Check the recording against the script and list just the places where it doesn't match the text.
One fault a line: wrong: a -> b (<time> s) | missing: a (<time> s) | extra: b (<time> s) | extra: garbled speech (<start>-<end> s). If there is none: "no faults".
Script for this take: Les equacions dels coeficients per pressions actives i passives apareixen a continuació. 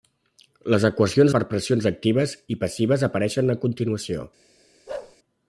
missing: dels coeficients (1.4 s)